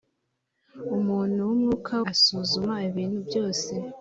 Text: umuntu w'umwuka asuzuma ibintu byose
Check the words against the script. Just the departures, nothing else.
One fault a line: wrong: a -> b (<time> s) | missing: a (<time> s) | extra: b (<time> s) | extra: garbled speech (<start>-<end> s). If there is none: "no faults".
no faults